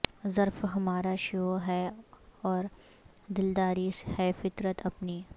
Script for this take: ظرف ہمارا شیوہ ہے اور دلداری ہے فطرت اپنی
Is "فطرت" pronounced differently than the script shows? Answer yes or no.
no